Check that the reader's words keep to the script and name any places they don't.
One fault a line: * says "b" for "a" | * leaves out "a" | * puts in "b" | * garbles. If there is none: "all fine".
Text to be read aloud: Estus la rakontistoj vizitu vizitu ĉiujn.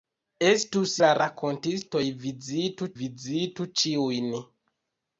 all fine